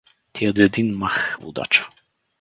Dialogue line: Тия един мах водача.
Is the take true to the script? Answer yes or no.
yes